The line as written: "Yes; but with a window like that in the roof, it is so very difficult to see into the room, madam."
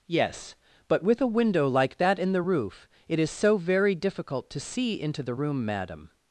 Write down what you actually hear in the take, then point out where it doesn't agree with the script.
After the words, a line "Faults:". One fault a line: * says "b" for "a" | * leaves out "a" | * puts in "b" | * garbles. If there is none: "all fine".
"Yes; but with a window like that in the roof, it is so very difficult to see into the room, madam."
Faults:
all fine